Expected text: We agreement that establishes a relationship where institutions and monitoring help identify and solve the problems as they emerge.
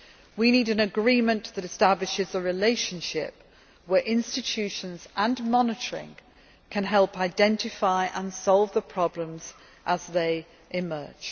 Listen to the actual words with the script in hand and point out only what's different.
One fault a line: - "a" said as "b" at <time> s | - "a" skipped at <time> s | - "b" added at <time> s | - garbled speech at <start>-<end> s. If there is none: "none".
- "need an" added at 0.5 s
- "can" added at 6.7 s